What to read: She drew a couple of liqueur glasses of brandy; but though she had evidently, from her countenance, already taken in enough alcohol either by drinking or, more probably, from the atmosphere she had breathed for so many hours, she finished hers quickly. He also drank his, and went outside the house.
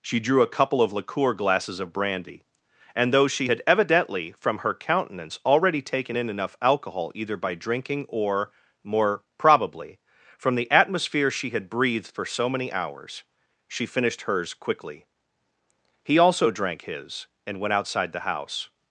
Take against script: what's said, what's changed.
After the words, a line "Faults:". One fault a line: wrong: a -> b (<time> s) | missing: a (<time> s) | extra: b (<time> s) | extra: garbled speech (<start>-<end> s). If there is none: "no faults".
She drew a couple of liqueur glasses of brandy; and though she had evidently, from her countenance, already taken in enough alcohol either by drinking or, more probably, from the atmosphere she had breathed for so many hours, she finished hers quickly. He also drank his, and went outside the house.
Faults:
wrong: but -> and (3.0 s)